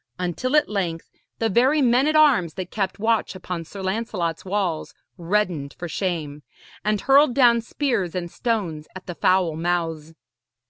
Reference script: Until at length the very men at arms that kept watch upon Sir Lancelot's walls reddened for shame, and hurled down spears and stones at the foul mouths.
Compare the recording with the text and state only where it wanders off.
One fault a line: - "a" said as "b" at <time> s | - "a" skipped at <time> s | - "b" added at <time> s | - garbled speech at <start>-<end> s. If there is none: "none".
none